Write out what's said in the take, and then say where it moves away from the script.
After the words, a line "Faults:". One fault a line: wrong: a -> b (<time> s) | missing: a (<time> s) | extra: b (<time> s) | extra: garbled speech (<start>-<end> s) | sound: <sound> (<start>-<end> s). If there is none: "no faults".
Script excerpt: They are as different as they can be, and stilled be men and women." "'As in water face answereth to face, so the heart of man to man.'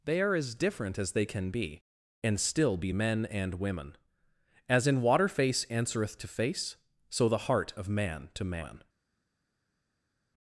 They are as different as they can be, and still be men and women." "'As in water face answereth to face, so the heart of man to man.'
Faults:
wrong: stilled -> still (2.4 s)